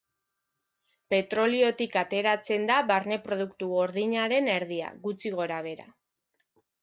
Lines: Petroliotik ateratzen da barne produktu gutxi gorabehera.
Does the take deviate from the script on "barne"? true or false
false